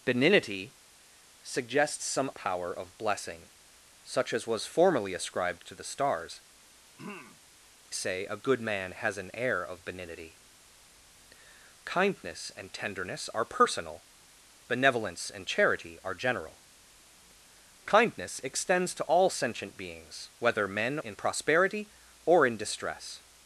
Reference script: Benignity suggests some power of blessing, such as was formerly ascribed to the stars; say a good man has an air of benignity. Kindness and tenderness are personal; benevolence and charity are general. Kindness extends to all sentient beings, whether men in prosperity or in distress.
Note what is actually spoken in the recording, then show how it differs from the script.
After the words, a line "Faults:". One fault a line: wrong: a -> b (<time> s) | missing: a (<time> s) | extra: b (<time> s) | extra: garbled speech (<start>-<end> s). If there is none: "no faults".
Benignity suggests some power of blessing, such as was formerly ascribed to the stars; say a good man has an air of benignity. Kindness and tenderness are personal; benevolence and charity are general. Kindness extends to all sentient beings, whether men in prosperity or in distress.
Faults:
no faults